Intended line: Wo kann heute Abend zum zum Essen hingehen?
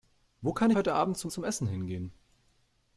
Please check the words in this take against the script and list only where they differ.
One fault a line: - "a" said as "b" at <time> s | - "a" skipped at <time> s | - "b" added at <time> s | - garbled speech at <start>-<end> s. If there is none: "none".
none